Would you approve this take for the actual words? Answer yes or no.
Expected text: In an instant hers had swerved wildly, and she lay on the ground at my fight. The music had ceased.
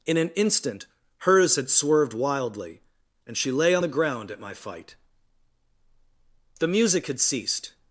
yes